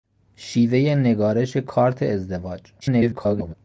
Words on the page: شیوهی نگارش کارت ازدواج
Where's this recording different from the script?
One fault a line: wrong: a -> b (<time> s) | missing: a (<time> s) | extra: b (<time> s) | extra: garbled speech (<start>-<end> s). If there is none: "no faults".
extra: garbled speech (2.8-3.5 s)